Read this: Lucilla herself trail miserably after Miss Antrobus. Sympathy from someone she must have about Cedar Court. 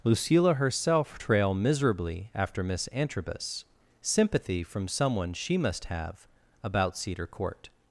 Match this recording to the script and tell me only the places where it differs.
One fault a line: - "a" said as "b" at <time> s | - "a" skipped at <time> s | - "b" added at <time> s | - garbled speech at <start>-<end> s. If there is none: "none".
none